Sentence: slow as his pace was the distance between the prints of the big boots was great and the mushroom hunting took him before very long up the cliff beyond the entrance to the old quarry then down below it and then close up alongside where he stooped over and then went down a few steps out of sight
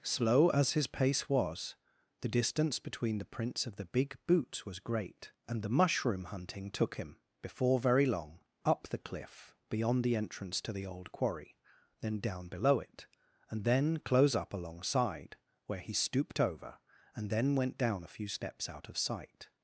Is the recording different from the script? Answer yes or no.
no